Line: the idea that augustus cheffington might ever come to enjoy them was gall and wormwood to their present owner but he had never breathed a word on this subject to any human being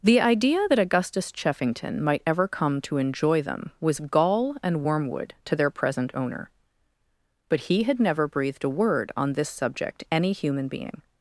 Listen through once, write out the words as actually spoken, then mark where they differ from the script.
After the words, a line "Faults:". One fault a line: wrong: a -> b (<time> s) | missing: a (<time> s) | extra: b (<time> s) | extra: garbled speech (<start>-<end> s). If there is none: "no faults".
the idea that augustus cheffington might ever come to enjoy them was gall and wormwood to their present owner but he had never breathed a word on this subject any human being
Faults:
missing: to (10.0 s)